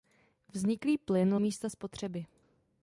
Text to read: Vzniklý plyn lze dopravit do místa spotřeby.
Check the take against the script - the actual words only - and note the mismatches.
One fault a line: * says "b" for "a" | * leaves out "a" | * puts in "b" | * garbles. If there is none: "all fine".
* leaves out "lze dopravit do"